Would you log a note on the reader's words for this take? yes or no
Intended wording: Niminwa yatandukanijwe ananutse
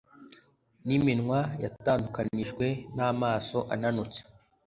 yes